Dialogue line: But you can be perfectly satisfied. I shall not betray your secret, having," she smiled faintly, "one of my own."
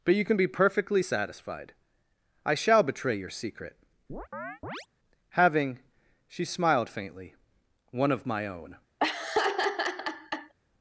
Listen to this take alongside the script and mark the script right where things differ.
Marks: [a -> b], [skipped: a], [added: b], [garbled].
But you can be perfectly satisfied. I shall [skipped: not] betray your secret, having," she smiled faintly, "one of my own."